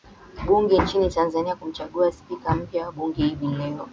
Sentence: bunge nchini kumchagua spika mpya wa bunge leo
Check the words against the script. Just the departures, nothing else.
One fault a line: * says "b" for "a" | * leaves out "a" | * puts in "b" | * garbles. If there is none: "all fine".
* puts in "tanzania"
* puts in "hivi"